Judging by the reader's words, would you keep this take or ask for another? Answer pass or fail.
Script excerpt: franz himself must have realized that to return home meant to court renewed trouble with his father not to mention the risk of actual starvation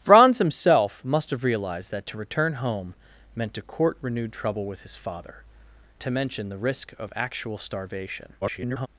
fail